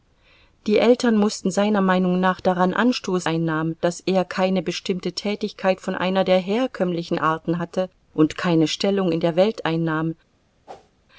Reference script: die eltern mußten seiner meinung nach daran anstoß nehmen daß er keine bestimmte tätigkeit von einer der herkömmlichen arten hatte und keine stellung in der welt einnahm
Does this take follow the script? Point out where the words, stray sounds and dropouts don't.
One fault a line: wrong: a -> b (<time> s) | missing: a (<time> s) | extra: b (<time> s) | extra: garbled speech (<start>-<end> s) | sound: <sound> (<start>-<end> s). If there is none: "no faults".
wrong: nehmen -> einnahm (3.3 s)
sound: whoosh (10.7-10.9 s)